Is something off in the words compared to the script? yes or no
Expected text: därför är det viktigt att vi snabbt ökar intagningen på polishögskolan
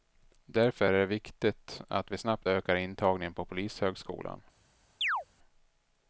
no